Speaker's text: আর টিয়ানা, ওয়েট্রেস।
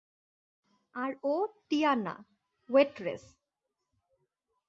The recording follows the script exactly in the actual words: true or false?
false